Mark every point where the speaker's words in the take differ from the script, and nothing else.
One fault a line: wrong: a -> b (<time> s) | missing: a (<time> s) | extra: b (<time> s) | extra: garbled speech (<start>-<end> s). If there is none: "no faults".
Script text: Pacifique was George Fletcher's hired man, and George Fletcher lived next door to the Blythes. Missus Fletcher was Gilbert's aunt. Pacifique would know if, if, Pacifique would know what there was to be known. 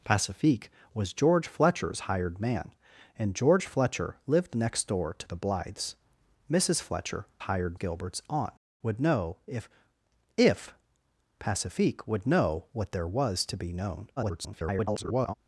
wrong: was -> hired (7.4 s)
missing: Pacifique (8.5 s)
extra: garbled speech (14.2-15.3 s)